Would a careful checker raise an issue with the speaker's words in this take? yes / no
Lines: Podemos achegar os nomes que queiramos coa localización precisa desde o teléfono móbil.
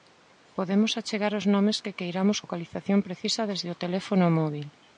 yes